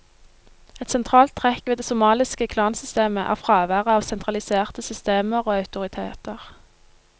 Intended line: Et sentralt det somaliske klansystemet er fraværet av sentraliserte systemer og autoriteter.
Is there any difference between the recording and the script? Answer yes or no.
yes